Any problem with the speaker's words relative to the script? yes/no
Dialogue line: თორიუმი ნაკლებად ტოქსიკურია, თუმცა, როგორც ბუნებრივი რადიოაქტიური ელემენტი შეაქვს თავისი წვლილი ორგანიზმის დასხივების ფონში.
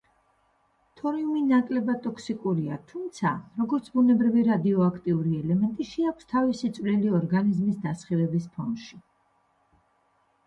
no